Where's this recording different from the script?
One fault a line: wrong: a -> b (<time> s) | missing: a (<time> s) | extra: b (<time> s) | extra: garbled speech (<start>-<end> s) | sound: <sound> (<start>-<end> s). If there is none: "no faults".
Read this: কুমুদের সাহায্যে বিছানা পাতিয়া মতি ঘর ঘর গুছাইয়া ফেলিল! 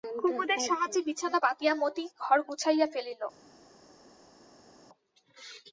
missing: ঘর (2.4 s)